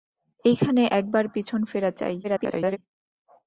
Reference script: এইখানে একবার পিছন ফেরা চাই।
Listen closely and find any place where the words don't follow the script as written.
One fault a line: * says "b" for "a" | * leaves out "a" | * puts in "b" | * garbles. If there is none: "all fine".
* garbles